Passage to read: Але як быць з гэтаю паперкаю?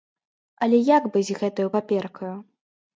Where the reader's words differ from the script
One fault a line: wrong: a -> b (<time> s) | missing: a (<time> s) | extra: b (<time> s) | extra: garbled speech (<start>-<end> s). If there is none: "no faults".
no faults